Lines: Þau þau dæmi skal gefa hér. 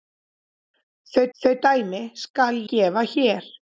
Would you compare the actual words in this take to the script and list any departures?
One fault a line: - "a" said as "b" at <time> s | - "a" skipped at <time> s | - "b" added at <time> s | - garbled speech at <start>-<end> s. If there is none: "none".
none